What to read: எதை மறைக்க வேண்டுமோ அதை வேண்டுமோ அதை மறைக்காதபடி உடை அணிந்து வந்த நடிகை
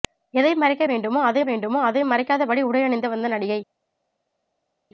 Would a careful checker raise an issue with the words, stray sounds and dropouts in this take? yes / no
no